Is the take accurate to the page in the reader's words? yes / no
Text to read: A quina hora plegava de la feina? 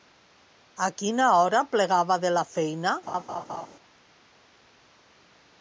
yes